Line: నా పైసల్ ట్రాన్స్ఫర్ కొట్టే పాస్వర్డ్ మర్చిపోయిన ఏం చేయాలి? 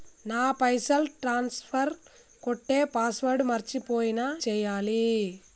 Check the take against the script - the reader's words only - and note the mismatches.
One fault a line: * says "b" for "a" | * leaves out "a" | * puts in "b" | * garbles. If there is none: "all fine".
* leaves out "ఏం"